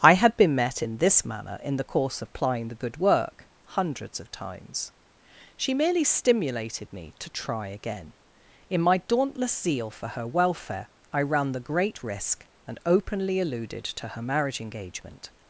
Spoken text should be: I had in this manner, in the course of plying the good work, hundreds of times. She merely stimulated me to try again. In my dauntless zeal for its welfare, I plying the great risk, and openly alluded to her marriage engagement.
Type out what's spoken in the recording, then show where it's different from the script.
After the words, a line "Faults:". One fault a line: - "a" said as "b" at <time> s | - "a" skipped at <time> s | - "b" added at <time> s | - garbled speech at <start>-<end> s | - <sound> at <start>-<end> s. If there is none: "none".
I had been met in this manner, in the course of plying the good work, hundreds of times. She merely stimulated me to try again. In my dauntless zeal for her welfare, I ran the great risk, and openly alluded to her marriage engagement.
Faults:
- "been met" added at 0.3 s
- "its" said as "her" at 10.1 s
- "plying" said as "ran" at 11.2 s